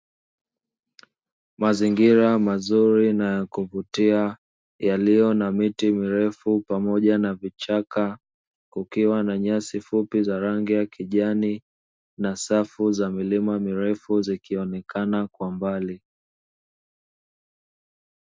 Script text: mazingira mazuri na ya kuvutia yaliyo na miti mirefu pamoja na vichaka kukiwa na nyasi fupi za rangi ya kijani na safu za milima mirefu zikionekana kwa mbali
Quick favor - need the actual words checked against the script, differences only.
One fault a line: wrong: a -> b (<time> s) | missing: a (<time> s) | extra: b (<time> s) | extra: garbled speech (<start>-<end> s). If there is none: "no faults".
no faults